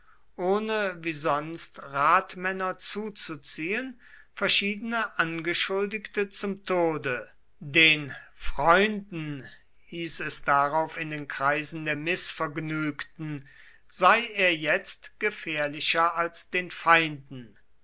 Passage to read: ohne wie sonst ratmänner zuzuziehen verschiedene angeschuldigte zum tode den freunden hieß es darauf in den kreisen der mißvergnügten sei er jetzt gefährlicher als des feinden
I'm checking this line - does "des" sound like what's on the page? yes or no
no